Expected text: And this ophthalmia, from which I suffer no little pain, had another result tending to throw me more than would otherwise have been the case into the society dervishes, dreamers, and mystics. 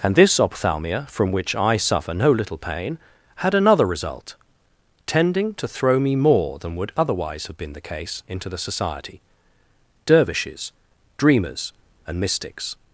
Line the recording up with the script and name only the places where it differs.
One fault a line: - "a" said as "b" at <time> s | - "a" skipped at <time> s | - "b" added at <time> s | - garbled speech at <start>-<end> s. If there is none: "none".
none